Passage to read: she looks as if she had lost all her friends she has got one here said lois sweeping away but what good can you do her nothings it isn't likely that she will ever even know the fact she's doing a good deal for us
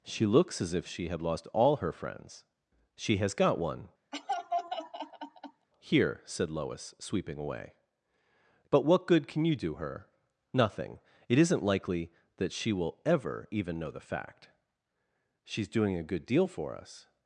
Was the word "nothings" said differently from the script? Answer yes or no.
yes